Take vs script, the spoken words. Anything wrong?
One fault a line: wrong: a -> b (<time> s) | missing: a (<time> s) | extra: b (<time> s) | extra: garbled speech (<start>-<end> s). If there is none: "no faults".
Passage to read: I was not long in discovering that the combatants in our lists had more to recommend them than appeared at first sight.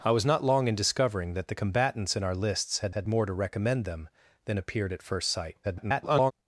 extra: had (2.9 s)
extra: garbled speech (5.6-6.3 s)